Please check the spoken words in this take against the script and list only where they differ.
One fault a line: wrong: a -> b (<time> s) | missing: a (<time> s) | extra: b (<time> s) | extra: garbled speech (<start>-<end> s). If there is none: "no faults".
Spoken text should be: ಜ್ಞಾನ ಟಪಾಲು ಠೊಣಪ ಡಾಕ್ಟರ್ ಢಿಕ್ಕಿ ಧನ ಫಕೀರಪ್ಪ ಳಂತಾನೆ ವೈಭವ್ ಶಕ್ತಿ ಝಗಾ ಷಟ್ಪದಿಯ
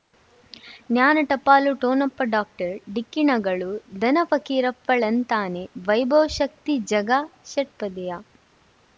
extra: ಣಗಳು (3.2 s)